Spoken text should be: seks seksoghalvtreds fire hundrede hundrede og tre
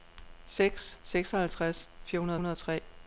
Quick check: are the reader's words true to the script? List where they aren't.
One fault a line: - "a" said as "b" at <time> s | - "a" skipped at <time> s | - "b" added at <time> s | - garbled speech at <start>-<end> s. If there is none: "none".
none